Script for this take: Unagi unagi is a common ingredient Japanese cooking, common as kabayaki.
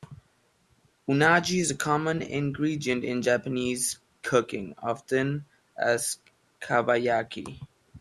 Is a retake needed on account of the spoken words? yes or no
yes